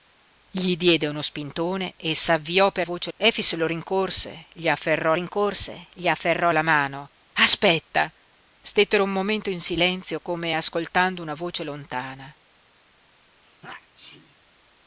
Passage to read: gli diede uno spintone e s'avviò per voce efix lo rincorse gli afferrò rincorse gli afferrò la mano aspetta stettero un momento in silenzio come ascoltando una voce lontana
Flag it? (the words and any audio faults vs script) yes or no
yes